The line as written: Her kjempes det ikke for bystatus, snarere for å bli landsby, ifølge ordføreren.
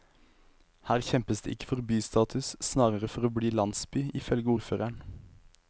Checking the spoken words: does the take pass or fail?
pass